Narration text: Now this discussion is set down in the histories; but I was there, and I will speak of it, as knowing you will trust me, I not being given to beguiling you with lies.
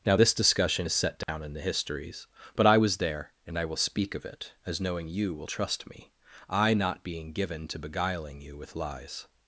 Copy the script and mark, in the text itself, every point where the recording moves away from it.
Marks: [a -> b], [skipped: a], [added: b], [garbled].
Now this discussion is set down in the histories; but I was there, and I will speak of it, as knowing you will trust me, I not being given to beguiling you with lies.